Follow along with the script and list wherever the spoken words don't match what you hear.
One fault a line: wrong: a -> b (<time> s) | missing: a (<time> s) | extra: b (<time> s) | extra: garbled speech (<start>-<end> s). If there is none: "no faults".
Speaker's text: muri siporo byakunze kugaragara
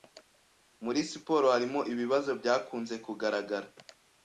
extra: harimo ibibazo (1.5 s)